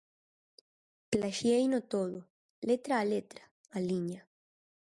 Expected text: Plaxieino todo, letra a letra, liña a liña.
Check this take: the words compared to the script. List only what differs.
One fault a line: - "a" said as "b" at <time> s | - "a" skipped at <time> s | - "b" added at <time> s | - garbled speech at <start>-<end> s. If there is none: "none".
- "liña" skipped at 3.5 s